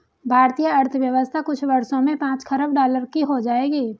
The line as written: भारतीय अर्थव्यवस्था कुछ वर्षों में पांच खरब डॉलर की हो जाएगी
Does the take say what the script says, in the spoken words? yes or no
yes